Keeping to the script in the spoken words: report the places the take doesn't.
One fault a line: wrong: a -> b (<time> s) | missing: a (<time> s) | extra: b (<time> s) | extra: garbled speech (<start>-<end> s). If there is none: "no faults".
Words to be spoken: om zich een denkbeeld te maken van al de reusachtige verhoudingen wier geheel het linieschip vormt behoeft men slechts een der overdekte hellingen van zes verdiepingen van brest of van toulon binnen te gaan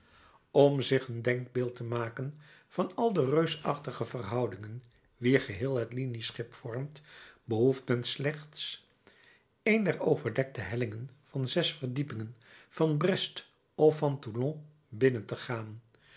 no faults